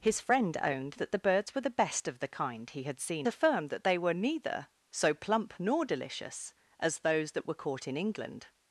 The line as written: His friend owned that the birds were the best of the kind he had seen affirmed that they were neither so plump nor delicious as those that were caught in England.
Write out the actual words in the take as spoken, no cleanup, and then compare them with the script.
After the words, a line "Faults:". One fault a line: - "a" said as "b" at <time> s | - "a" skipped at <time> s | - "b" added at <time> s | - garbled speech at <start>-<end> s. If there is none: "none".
His friend owned that the birds were the best of the kind he had seen affirmed that they were neither so plump nor delicious as those that were caught in England.
Faults:
none